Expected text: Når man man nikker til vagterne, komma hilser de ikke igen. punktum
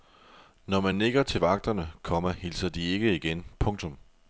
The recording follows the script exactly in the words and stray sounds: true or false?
false